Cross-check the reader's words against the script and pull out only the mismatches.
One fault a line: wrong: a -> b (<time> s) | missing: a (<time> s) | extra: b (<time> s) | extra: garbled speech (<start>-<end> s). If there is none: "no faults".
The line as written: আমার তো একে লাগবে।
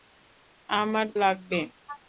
missing: তো একে (1.1 s)